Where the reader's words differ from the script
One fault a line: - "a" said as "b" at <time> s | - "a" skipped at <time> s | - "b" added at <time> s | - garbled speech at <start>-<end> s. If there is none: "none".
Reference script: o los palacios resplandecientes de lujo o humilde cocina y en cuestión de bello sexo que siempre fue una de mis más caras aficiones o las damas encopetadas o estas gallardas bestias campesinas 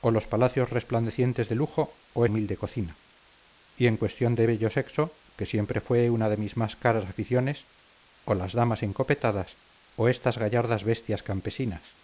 none